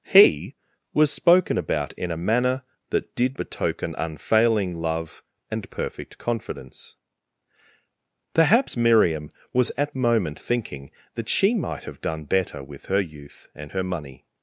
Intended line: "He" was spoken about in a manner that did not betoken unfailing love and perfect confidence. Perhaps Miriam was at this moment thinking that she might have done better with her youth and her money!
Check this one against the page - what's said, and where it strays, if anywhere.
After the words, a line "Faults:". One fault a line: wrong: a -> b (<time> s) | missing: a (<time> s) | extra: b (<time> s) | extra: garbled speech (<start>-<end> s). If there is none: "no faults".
"He" was spoken about in a manner that did betoken unfailing love and perfect confidence. Perhaps Miriam was at moment thinking that she might have done better with her youth and her money!
Faults:
missing: not (3.4 s)
missing: this (10.0 s)